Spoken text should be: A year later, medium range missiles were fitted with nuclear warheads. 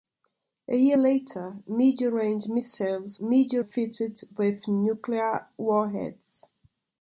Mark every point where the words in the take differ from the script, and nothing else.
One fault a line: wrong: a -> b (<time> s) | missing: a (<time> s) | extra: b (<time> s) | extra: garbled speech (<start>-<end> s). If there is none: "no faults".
wrong: were -> medium (3.2 s)